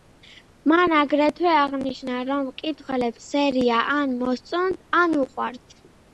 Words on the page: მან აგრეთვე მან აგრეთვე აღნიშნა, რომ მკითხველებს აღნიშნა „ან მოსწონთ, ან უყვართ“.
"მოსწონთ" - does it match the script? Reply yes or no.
yes